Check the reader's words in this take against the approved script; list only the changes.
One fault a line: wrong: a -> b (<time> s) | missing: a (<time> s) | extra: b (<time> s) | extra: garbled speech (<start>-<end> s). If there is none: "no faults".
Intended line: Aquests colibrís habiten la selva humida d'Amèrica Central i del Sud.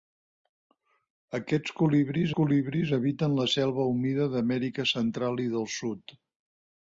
extra: colibrís (2.4 s)